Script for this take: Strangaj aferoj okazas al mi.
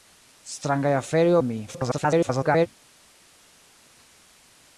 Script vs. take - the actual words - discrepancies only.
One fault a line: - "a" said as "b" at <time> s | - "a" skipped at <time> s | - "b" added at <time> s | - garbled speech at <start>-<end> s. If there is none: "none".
- "okazas" skipped at 1.4 s
- garbled speech at 1.7-2.7 s